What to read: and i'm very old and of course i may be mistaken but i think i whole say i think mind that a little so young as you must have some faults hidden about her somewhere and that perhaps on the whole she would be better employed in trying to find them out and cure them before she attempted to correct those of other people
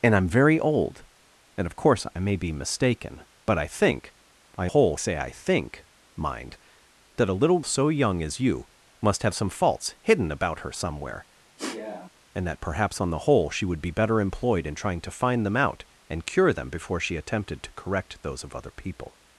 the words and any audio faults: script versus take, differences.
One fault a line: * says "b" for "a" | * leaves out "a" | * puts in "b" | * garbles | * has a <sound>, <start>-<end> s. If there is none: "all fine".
* has a sniff, 11.6-12.1 s